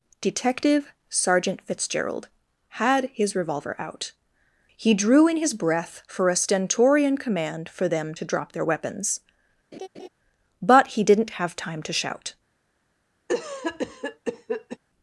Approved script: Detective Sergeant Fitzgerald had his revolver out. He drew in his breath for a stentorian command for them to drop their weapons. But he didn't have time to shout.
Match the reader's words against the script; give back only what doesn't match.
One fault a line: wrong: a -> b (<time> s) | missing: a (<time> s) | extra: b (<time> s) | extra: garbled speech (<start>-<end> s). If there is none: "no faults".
no faults